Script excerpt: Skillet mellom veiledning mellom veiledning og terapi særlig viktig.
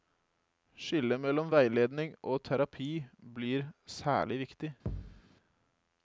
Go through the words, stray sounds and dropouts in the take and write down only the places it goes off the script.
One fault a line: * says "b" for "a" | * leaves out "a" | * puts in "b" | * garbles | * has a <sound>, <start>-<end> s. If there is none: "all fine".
* leaves out "mellom veiledning"
* puts in "blir"
* has a thud, 4.9-5.2 s